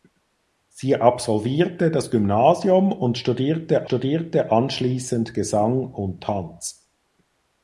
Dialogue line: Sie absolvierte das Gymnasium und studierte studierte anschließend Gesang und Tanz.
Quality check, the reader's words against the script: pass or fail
pass